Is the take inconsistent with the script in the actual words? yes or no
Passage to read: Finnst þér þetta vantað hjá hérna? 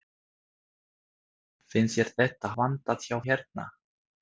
no